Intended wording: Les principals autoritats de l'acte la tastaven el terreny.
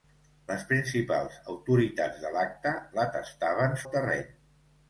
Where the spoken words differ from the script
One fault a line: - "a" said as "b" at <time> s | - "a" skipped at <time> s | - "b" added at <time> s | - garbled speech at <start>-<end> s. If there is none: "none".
none